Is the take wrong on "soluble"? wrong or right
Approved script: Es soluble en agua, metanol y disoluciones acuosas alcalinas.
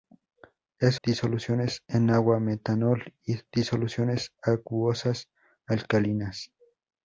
wrong